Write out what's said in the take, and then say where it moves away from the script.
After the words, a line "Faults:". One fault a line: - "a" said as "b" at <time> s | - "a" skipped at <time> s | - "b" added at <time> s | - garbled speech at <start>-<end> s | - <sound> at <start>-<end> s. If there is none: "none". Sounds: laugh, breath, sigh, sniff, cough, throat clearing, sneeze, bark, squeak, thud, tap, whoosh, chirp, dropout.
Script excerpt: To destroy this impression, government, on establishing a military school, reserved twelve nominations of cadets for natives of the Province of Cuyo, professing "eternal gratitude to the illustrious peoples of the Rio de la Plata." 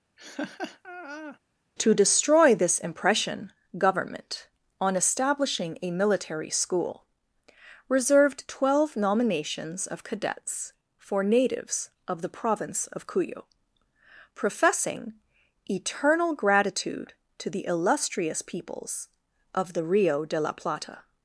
To destroy this impression, government, on establishing a military school, reserved twelve nominations of cadets for natives of the Province of Cuyo, professing "eternal gratitude to the illustrious peoples of the Rio de la Plata."
Faults:
- laugh at 0.2-1.4 s